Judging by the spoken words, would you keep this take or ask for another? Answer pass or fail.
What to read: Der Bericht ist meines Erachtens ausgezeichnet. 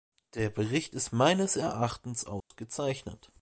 pass